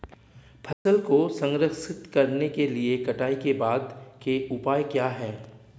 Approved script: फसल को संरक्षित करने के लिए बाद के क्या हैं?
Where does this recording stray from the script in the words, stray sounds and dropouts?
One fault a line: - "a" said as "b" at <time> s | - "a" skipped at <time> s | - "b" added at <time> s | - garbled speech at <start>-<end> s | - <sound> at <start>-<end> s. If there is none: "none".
- dropout at 0.7-0.9 s
- "कटाई के" added at 3.0 s
- "उपाय" added at 4.5 s